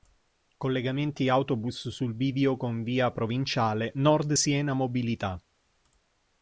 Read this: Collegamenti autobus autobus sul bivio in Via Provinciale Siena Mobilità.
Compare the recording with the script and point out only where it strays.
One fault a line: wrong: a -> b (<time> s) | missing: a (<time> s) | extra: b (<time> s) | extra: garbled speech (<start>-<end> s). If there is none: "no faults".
missing: autobus (1.9 s)
wrong: in -> con (2.6 s)
extra: Nord (3.9 s)